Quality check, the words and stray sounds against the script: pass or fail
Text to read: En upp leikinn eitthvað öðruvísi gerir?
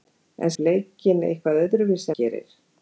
pass